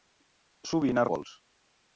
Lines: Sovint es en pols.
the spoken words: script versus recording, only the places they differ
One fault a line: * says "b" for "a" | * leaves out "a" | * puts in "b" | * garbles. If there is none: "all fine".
all fine